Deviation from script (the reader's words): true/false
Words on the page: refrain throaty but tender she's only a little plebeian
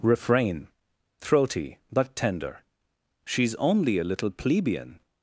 false